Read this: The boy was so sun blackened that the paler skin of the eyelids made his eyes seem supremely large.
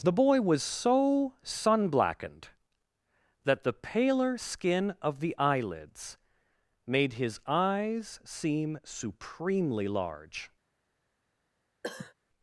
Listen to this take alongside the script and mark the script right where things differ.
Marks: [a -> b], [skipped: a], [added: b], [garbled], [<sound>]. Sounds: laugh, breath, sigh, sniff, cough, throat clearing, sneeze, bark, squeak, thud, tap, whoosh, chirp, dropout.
The boy was so sun blackened that the paler skin of the eyelids made his eyes seem supremely large. [cough]